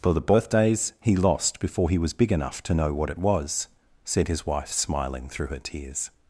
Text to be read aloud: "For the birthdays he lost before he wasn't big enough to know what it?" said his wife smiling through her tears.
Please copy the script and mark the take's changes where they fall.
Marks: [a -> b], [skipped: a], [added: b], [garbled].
"For the birthdays he lost before he [wasn't -> was] big enough to know what it?" [added: was] said his wife smiling through her tears.